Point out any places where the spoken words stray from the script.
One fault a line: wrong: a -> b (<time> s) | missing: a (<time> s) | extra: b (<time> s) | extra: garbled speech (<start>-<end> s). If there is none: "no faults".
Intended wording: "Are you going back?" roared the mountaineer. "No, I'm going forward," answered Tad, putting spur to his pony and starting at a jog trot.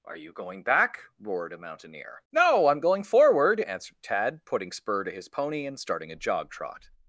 wrong: the -> a (1.5 s)
missing: at (6.1 s)